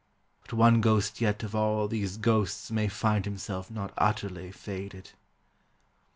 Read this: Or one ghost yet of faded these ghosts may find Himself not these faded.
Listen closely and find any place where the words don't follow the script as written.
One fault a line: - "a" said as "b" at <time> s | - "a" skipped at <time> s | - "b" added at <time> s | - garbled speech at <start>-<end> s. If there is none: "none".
- "Or" said as "But" at 0.4 s
- "faded" said as "all" at 1.5 s
- "these" said as "utterly" at 4.0 s